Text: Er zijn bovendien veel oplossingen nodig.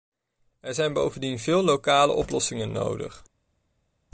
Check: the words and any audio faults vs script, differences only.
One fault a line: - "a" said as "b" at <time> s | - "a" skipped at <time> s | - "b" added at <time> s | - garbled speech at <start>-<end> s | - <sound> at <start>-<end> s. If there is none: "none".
- "lokale" added at 1.6 s